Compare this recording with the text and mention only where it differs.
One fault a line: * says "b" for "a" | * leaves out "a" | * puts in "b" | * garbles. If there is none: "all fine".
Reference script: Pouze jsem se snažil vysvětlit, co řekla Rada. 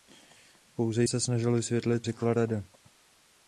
* leaves out "jsem"
* leaves out "co"